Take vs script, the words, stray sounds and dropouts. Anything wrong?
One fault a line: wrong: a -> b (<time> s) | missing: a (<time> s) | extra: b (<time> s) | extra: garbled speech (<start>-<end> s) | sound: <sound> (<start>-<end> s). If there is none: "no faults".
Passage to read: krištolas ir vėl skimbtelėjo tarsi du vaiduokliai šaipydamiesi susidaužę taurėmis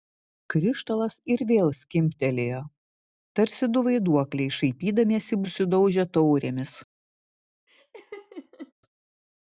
sound: laugh (7.7-8.7 s)